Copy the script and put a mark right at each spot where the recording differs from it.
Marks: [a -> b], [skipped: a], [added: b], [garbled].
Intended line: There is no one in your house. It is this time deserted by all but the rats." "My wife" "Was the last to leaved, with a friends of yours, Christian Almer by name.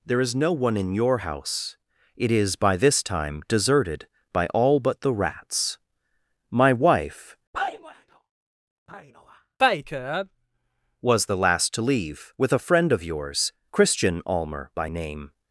There is no one in your house. It is [added: by] this time deserted by all but the rats." "My wife" "Was the last to [leaved, -> leave] with a [friends -> friend] of yours, Christian Almer by name.